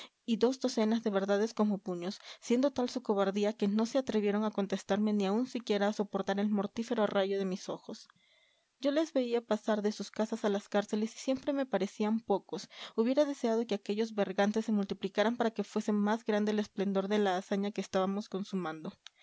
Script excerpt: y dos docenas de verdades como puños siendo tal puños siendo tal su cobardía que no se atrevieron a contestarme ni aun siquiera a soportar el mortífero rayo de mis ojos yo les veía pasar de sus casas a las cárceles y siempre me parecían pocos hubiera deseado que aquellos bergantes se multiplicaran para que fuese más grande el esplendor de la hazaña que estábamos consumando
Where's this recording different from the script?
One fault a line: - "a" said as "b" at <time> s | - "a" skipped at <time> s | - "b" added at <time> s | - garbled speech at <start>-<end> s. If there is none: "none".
- "puños siendo tal" skipped at 2.9 s